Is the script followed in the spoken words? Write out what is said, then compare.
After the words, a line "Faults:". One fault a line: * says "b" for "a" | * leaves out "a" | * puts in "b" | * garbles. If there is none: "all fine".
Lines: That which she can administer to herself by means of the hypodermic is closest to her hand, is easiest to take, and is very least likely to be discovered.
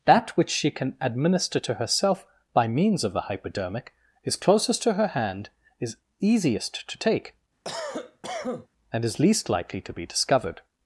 That which she can administer to herself by means of the hypodermic is closest to her hand, is easiest to take, and is least likely to be discovered.
Faults:
* leaves out "very"